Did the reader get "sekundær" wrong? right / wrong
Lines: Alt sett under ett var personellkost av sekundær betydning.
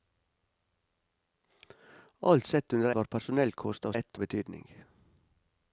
wrong